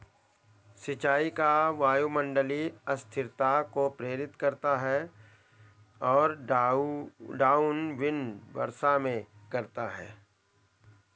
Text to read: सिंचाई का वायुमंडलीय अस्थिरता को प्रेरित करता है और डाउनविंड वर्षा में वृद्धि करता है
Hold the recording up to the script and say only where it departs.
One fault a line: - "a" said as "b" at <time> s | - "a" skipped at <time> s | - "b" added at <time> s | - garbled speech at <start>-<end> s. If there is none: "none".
- "वृद्धि" skipped at 9.3 s